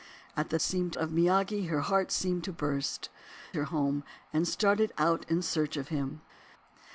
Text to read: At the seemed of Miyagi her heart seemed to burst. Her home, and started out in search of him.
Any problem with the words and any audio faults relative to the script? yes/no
no